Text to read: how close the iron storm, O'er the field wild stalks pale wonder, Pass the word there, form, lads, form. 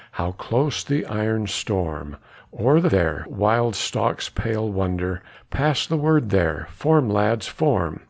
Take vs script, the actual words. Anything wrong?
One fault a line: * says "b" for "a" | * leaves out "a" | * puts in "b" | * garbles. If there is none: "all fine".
* says "there" for "field"